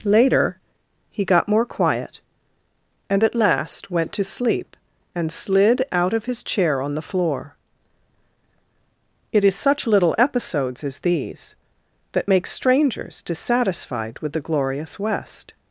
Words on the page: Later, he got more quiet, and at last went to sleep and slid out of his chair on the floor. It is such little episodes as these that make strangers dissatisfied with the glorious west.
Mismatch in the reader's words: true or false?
false